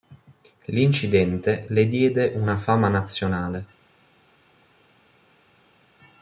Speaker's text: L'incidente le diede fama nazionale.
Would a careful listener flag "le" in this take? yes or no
no